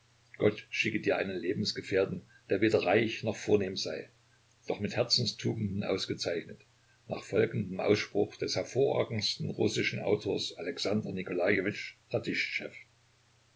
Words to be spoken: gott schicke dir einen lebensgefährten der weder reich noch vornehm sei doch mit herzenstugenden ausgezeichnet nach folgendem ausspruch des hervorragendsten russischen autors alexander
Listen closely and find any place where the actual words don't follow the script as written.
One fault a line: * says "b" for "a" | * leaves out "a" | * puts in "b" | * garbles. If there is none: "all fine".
all fine